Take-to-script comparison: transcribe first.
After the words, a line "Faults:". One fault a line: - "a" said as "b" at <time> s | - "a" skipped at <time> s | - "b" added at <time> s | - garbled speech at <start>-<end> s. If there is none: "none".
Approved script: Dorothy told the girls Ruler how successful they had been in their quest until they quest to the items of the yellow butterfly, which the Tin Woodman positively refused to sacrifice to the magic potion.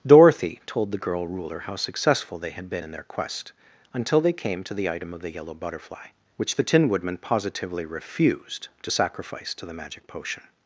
Dorothy told the girl Ruler how successful they had been in their quest until they came to the item of the yellow butterfly, which the Tin Woodman positively refused to sacrifice to the magic potion.
Faults:
- "girls" said as "girl" at 1.0 s
- "quest" said as "came" at 4.3 s
- "items" said as "item" at 4.9 s